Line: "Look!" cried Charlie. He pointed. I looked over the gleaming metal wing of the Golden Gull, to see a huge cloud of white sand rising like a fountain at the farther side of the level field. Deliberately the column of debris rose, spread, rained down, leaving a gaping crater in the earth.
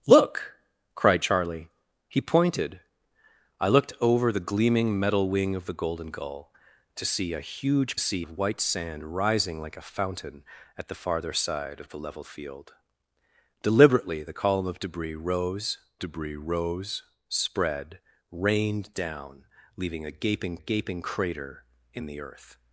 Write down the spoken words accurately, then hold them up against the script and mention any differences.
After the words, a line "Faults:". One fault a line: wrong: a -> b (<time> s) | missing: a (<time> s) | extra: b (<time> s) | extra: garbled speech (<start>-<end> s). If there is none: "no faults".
"Look!" cried Charlie. He pointed. I looked over the gleaming metal wing of the Golden Gull, to see a huge see of white sand rising like a fountain at the farther side of the level field. Deliberately the column of debris rose debris rose, spread, rained down, leaving a gaping gaping crater in the earth.
Faults:
wrong: cloud -> see (8.0 s)
extra: debris rose (16.0 s)
extra: gaping (20.6 s)